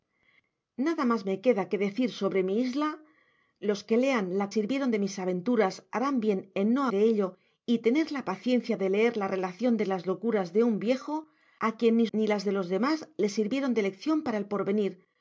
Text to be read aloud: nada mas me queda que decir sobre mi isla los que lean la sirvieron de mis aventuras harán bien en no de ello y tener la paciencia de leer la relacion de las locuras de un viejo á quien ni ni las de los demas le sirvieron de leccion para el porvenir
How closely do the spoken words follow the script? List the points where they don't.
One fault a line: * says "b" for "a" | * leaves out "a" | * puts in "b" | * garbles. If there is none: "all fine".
all fine